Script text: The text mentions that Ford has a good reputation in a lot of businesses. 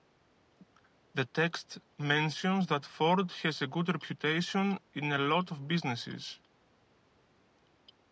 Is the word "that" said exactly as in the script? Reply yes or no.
yes